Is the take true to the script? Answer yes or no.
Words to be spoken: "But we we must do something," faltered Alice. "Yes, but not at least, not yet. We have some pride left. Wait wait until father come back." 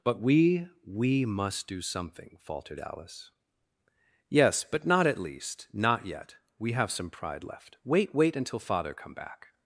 yes